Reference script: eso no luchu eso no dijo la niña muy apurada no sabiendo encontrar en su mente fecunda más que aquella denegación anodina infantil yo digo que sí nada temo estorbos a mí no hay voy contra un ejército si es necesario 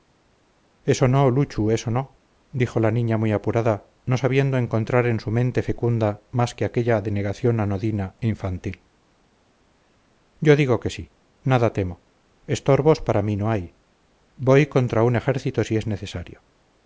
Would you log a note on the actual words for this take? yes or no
yes